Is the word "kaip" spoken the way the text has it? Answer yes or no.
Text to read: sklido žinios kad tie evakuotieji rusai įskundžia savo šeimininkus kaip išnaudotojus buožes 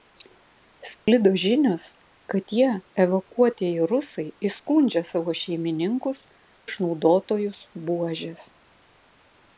no